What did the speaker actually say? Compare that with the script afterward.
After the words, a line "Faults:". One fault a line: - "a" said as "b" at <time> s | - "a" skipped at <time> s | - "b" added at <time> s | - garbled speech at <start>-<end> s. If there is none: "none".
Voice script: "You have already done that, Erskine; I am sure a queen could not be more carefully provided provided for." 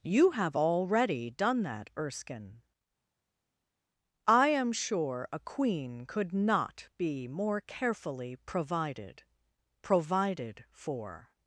"You have already done that, Erskine; I am sure a queen could not be more carefully provided provided for."
Faults:
none